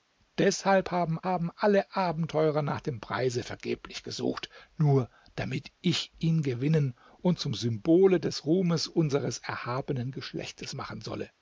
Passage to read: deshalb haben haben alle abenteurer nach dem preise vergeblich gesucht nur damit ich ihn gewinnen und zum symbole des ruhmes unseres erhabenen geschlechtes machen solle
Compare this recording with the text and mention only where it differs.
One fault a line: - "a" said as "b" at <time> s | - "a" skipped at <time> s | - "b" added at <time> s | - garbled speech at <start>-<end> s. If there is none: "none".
none